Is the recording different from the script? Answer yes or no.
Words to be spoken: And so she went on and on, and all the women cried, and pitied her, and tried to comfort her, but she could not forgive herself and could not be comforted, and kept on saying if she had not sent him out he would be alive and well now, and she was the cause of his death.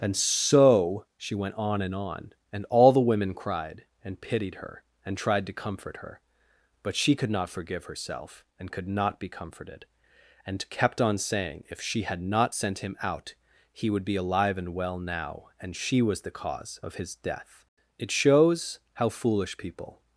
yes